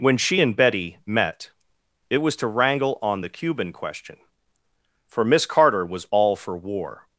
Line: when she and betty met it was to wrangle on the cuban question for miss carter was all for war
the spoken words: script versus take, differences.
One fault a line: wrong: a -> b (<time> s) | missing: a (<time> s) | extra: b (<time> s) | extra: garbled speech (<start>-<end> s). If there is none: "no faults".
no faults